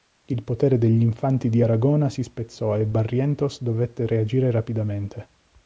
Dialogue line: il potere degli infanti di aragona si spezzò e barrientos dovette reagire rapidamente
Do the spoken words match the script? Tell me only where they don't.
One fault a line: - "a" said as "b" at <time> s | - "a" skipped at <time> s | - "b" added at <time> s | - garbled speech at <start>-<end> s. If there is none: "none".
none